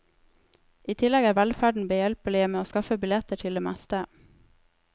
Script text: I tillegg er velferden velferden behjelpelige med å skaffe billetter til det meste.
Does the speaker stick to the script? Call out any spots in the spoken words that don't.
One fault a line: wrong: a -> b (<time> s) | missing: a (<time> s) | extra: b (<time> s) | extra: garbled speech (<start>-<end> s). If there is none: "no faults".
missing: velferden (1.9 s)